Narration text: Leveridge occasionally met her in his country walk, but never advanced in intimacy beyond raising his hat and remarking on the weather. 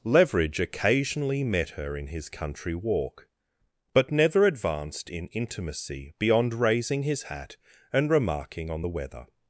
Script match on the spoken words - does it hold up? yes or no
yes